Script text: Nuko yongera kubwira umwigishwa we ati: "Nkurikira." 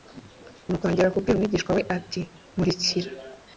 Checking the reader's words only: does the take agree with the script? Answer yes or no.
yes